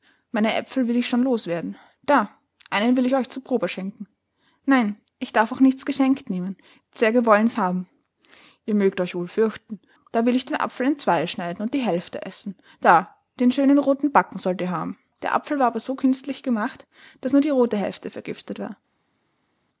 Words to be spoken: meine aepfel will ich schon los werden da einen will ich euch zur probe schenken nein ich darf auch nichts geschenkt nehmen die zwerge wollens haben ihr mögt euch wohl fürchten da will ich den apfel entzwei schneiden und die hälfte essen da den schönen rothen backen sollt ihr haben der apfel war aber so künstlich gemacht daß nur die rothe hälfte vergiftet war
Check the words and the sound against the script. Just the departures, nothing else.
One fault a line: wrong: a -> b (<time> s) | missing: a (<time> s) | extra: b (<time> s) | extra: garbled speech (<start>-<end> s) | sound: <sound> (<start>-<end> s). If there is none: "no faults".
no faults